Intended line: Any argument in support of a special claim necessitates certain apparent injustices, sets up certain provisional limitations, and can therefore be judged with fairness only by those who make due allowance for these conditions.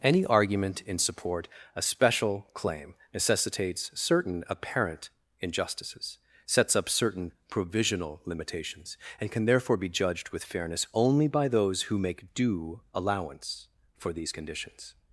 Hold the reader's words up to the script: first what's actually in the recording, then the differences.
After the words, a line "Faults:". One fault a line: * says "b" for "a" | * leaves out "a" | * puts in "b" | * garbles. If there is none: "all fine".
Any argument in support a special claim necessitates certain apparent injustices, sets up certain provisional limitations, and can therefore be judged with fairness only by those who make due allowance for these conditions.
Faults:
* leaves out "of"